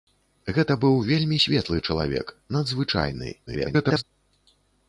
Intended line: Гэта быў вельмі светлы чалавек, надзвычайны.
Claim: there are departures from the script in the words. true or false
true